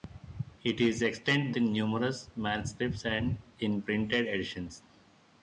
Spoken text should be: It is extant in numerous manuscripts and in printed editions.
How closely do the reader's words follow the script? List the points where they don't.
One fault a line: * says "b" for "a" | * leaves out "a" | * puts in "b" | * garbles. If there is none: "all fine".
all fine